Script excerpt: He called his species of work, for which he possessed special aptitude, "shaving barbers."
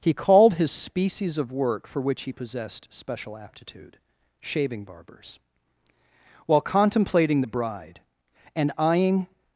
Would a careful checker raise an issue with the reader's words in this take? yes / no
yes